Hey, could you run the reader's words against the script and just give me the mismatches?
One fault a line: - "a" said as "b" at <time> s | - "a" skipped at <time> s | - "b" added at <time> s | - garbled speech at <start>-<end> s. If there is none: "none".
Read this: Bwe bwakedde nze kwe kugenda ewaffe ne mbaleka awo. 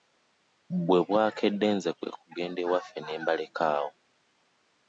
none